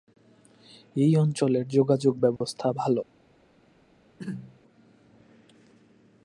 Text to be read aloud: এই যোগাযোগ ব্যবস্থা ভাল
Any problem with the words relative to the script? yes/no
yes